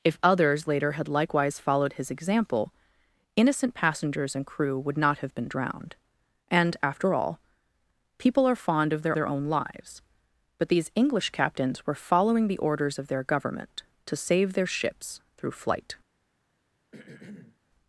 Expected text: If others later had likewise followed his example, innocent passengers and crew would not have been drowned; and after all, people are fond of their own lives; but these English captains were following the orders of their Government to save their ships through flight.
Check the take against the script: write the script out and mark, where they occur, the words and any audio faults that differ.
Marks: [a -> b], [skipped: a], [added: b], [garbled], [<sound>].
If others later had likewise followed his example, innocent passengers and crew would not have been drowned; and after all, people are fond of their [added: their] own lives; but these English captains were following the orders of their Government to save their ships through flight. [throat clearing]